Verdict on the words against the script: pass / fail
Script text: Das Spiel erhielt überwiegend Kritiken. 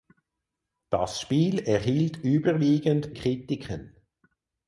pass